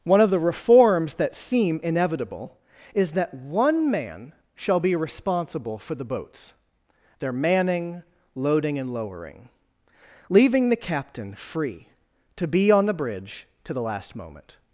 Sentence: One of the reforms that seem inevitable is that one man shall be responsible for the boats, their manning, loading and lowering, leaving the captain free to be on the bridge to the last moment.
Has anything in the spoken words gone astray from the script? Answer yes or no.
no